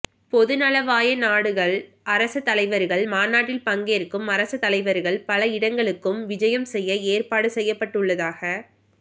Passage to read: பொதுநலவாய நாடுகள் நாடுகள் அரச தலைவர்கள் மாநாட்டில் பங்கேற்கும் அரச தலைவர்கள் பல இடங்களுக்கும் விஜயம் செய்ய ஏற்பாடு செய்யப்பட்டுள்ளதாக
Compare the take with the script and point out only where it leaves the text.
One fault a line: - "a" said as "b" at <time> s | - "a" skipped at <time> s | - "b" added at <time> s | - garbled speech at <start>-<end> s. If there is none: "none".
- "நாடுகள்" skipped at 1.7 s